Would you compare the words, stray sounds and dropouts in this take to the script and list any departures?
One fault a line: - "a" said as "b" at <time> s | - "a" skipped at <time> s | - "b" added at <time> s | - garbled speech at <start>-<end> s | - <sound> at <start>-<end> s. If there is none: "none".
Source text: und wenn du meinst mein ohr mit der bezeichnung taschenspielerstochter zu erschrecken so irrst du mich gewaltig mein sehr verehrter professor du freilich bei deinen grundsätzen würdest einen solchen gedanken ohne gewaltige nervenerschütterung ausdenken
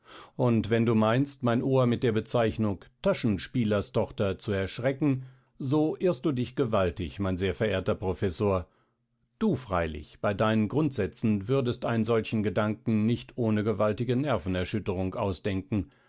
- "mich" said as "dich" at 6.3 s
- "nicht" added at 13.1 s